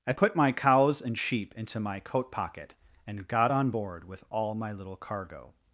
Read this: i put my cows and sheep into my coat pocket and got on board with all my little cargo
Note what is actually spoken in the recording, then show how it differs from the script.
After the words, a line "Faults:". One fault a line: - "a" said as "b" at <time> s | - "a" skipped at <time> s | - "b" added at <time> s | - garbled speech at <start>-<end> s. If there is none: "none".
i put my cows and sheep into my coat pocket and got on board with all my little cargo
Faults:
none